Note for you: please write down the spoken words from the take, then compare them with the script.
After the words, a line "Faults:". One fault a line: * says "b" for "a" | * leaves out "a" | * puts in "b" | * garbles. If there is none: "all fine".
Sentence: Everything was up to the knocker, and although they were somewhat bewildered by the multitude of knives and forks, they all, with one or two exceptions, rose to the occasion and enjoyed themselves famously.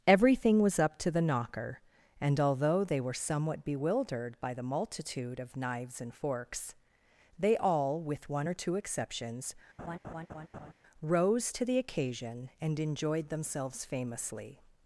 Everything was up to the knocker, and although they were somewhat bewildered by the multitude of knives and forks, they all, with one or two exceptions, rose to the occasion and enjoyed themselves famously.
Faults:
all fine